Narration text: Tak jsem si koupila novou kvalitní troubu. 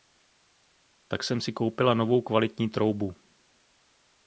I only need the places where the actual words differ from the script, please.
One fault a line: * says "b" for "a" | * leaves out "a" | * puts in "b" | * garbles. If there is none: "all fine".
all fine